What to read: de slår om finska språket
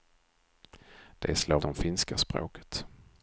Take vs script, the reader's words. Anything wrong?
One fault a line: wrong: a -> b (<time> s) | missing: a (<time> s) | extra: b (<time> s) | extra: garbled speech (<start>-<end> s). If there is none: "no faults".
no faults